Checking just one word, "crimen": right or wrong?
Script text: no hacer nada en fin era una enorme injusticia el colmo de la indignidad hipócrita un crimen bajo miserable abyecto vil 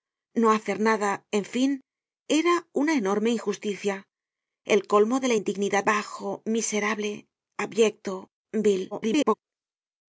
wrong